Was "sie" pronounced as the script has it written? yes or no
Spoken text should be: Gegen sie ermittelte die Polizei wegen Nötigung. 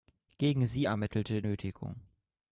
yes